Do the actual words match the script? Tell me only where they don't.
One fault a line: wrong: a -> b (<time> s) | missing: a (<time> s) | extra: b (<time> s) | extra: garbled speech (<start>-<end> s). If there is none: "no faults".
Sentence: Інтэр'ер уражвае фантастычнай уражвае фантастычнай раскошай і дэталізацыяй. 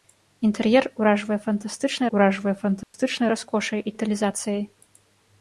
no faults